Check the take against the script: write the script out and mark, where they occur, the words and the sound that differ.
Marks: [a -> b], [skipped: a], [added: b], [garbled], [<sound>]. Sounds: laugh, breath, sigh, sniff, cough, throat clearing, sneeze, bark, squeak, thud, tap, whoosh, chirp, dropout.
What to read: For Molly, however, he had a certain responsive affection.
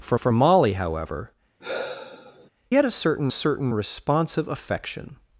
For [added: for] Molly, however, [skipped: he] [sigh] had a certain [added: certain] responsive affection.